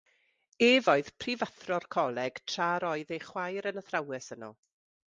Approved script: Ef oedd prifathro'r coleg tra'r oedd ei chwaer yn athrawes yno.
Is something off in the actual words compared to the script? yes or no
no